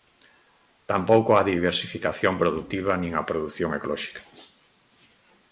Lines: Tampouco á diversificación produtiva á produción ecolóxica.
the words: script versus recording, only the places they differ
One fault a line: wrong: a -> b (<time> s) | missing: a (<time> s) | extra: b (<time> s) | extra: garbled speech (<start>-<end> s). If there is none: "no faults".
extra: nin (3.0 s)